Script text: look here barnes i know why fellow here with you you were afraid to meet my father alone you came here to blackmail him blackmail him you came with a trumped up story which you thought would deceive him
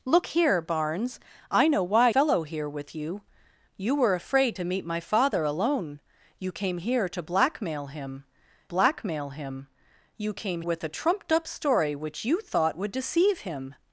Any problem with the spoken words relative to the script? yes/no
no